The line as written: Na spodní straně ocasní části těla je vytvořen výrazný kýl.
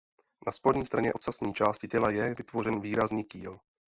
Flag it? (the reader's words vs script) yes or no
no